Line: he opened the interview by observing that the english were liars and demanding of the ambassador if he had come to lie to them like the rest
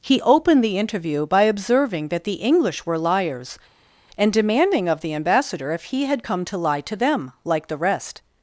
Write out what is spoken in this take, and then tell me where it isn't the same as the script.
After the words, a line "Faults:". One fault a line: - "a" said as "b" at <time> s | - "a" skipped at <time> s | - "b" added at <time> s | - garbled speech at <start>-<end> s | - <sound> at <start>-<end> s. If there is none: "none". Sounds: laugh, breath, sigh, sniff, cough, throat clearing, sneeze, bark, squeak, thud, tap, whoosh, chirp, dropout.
he opened the interview by observing that the english were liars and demanding of the ambassador if he had come to lie to them like the rest
Faults:
none